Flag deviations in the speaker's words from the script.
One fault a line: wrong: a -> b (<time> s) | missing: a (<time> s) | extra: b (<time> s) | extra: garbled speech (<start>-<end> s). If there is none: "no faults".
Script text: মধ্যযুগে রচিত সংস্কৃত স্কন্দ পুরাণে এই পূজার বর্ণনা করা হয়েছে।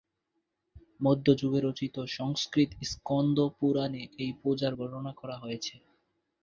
no faults